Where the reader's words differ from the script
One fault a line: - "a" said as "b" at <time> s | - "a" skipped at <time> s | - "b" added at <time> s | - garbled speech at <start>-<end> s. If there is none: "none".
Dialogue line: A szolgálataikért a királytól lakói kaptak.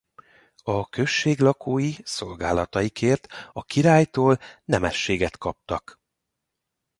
- "község lakói" added at 0.9 s
- "lakói" said as "nemességet" at 4.6 s